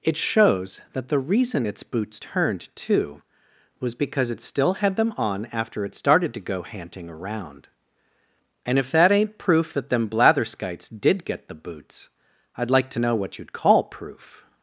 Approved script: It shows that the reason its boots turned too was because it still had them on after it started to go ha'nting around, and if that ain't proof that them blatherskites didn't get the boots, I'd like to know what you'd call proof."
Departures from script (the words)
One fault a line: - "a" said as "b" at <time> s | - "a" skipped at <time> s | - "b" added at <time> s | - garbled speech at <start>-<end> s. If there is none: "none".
- "didn't" said as "did" at 11.0 s